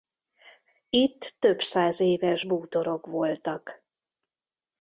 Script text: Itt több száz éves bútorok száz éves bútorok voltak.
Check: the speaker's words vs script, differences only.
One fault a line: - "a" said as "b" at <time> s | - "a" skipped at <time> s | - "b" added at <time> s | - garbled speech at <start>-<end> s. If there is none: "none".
- "száz éves bútorok" skipped at 3.1 s